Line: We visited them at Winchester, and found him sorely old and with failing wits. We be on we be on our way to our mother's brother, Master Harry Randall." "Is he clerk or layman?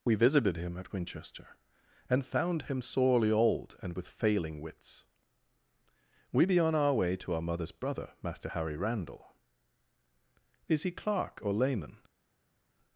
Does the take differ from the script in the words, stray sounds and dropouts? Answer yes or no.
yes